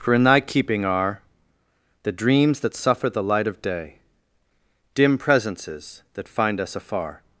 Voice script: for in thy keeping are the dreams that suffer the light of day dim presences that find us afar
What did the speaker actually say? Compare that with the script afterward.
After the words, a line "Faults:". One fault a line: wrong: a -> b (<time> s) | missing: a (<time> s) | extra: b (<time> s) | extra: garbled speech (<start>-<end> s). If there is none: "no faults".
for in thy keeping are the dreams that suffer the light of day dim presences that find us afar
Faults:
no faults